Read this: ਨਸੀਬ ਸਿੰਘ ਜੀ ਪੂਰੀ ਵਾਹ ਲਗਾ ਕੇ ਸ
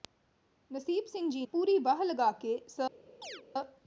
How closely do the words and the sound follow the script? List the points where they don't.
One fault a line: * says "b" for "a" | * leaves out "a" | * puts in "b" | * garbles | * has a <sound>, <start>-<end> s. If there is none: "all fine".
* has a chirp, 3.2-3.4 s